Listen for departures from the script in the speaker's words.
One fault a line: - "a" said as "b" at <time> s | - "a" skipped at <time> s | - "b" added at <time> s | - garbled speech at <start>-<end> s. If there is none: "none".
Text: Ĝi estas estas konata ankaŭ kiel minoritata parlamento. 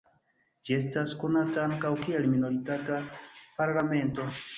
- "estas" skipped at 1.1 s